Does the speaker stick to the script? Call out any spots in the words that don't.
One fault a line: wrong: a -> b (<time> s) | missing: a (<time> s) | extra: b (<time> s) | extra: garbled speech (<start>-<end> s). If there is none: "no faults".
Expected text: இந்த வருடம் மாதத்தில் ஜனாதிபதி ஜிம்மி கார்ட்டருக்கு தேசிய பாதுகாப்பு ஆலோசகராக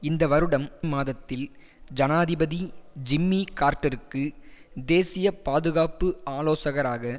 no faults